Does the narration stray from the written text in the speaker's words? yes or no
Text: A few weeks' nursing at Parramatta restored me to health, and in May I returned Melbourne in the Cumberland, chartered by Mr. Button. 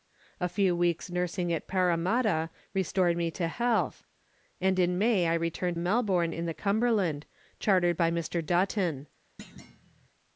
no